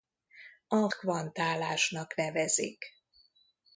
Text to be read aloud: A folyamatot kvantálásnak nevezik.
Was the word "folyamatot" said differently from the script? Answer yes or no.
yes